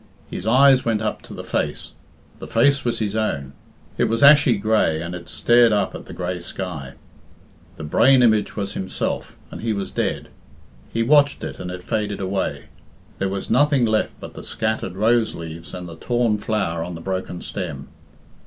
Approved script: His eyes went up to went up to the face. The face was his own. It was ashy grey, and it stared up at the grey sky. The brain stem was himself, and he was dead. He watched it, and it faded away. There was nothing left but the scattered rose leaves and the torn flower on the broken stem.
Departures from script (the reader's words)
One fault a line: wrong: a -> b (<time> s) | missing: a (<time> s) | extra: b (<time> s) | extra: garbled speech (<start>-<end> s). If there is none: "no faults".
missing: went up to (1.3 s)
wrong: stem -> image (8.2 s)